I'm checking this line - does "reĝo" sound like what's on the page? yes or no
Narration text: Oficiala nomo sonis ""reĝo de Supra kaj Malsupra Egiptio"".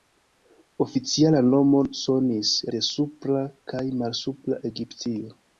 no